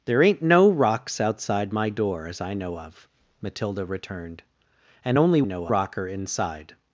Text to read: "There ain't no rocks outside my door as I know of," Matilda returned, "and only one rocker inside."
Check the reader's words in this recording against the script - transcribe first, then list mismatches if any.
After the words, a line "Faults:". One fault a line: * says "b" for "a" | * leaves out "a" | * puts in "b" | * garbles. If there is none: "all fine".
"There ain't no rocks outside my door as I know of," Matilda returned, "and only know rocker inside."
Faults:
* says "know" for "one"